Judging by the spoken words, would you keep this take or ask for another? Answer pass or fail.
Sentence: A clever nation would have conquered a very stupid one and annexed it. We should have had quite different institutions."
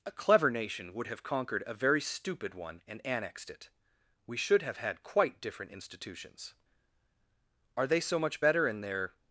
fail